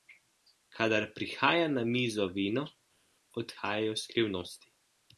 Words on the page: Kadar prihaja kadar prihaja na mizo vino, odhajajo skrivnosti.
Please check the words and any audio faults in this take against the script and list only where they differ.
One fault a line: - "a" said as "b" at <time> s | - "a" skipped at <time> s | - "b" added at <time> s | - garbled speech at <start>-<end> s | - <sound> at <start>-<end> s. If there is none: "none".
- "kadar prihaja" skipped at 1.7 s